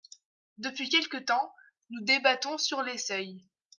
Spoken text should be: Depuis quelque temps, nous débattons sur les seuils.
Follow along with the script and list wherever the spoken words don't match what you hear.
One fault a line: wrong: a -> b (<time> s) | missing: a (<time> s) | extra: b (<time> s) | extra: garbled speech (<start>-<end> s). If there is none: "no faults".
no faults